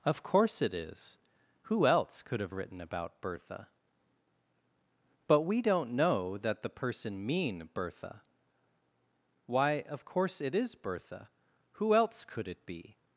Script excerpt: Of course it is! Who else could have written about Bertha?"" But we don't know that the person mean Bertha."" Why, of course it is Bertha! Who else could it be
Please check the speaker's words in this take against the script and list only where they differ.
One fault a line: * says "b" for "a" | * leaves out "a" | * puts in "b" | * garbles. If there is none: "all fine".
all fine